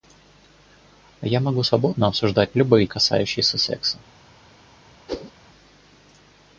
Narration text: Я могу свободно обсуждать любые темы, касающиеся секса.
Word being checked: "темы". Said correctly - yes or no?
no